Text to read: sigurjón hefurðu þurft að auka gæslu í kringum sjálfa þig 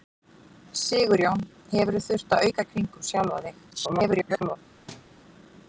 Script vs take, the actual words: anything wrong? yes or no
yes